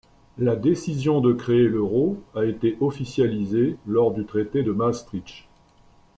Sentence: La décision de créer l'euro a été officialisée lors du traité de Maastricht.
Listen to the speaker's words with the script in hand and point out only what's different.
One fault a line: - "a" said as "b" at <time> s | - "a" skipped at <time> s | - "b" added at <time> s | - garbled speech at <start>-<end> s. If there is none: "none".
none